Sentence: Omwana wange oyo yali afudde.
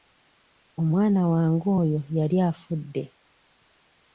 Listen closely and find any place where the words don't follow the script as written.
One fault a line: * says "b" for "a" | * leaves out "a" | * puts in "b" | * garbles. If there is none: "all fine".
all fine